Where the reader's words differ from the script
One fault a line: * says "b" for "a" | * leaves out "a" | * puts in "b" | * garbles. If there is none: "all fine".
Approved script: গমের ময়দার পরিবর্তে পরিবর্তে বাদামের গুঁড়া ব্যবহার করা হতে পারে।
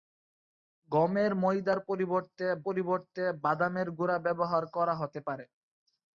all fine